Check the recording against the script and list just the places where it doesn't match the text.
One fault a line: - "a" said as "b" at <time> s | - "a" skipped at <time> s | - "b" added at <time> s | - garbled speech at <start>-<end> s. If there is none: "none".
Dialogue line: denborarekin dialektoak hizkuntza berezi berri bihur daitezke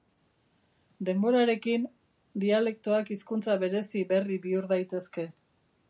none